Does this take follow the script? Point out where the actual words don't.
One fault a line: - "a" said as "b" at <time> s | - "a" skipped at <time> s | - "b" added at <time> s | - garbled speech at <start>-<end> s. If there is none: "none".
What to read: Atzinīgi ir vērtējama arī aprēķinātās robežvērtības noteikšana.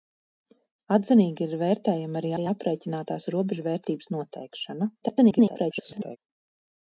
- "arī" added at 2.4 s
- garbled speech at 5.0-6.2 s